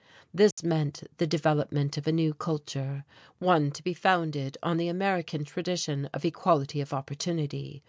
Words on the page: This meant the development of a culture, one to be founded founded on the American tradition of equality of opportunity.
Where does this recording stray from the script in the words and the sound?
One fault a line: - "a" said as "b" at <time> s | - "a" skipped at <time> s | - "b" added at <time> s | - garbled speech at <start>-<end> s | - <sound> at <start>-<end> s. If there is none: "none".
- dropout at 0.5-0.6 s
- "new" added at 2.1 s
- "founded" skipped at 4.6 s